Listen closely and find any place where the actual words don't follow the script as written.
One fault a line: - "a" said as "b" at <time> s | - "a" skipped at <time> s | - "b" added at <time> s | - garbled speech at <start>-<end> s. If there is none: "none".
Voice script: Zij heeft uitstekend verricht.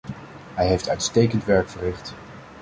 - "Zij" said as "Hij" at 0.5 s
- "werk" added at 1.4 s